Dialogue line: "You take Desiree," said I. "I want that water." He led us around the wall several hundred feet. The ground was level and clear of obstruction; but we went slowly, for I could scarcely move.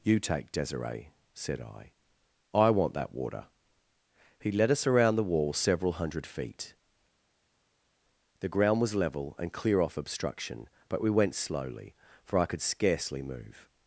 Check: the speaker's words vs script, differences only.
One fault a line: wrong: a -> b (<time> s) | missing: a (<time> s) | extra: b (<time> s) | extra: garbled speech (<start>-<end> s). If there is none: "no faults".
wrong: of -> off (9.8 s)